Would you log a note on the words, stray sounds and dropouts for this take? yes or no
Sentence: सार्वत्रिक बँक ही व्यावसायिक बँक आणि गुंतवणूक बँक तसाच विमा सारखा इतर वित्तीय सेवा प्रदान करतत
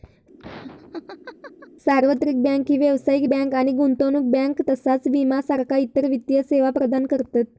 yes